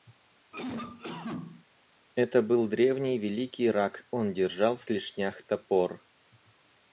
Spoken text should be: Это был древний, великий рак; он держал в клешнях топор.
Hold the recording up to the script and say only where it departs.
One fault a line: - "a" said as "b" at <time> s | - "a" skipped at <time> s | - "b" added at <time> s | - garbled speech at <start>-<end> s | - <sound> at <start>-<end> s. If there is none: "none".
- cough at 0.5-1.6 s